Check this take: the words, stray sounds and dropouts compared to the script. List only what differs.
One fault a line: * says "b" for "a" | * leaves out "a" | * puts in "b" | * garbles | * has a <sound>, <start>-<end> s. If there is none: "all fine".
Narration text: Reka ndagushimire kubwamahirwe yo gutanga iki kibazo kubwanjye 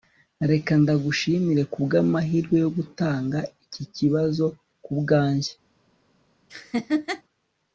* has a laugh, 6.5-7.2 s